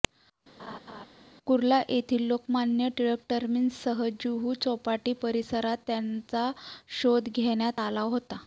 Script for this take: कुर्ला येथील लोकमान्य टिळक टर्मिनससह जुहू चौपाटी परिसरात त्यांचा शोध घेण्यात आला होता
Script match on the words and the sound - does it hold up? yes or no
no